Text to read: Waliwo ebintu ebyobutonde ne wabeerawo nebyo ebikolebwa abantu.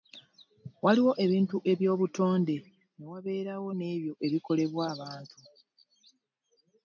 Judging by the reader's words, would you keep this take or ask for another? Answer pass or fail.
pass